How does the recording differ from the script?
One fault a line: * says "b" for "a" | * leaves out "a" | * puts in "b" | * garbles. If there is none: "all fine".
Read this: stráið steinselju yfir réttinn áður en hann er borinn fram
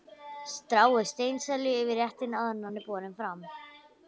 all fine